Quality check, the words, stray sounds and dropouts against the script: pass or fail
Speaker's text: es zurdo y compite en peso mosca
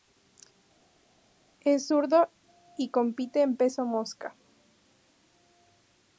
pass